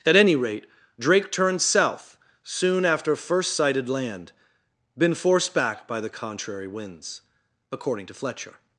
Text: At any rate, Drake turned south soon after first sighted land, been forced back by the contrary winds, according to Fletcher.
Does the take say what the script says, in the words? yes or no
yes